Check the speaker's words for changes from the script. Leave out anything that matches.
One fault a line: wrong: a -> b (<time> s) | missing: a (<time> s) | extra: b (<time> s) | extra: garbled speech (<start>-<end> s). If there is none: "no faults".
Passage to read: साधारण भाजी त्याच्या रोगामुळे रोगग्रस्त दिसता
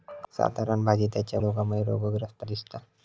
no faults